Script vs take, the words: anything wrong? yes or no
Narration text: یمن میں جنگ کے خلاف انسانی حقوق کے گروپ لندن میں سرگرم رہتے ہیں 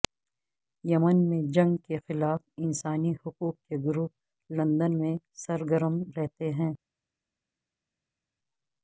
no